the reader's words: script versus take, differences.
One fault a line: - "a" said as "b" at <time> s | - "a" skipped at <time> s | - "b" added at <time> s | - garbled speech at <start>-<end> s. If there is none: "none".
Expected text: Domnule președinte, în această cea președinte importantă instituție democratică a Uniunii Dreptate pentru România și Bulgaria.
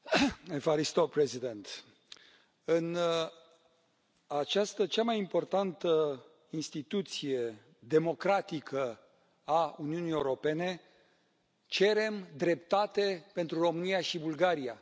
- "președinte" said as "mai" at 5.0 s
- "Europene cerem" added at 10.1 s